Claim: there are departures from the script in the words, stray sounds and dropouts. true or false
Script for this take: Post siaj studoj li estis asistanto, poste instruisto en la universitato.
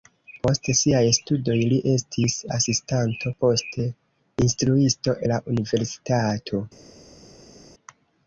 true